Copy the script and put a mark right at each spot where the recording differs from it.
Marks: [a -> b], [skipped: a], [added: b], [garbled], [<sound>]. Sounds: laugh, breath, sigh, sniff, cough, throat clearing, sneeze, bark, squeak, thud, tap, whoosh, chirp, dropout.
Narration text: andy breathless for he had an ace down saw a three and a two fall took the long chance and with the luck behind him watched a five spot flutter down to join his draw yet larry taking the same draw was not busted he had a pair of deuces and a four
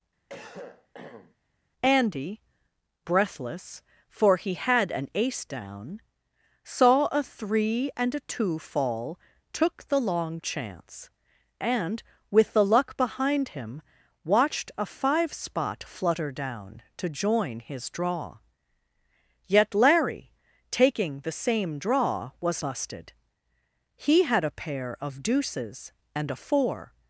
[cough] andy breathless for he had an ace down saw a three and a two fall took the long chance and with the luck behind him watched a five spot flutter down to join his draw yet larry taking the same draw was [skipped: not] busted he had a pair of deuces and a four